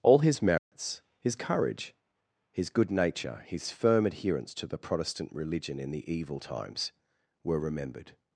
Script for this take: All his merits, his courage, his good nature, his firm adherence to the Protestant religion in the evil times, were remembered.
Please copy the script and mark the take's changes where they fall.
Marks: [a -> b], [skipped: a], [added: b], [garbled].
All his merits, his courage, his good nature, his firm adherence to the Protestant religion in the evil times, were remembered.